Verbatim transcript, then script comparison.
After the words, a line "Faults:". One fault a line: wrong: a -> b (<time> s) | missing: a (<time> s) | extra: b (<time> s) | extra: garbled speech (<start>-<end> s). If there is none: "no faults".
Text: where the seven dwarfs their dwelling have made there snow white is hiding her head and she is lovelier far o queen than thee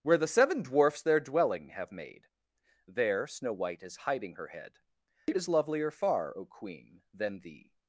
where the seven dwarfs their dwelling have made there snow white is hiding her head it is lovelier far o queen than thee
Faults:
wrong: and she -> it (5.3 s)